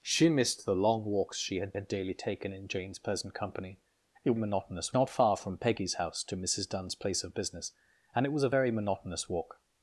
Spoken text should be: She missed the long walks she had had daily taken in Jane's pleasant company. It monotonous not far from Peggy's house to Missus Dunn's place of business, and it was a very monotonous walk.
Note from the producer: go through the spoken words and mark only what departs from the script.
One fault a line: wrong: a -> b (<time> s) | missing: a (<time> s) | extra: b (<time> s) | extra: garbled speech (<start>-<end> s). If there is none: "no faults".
no faults